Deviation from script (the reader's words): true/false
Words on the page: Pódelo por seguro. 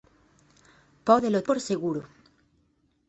false